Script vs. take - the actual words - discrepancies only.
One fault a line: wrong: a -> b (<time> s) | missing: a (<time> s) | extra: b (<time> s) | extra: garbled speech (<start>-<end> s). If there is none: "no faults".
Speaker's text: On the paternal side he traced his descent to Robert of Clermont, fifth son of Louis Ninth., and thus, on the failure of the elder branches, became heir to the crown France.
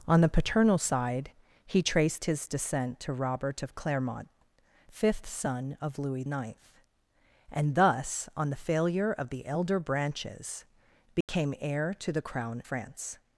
no faults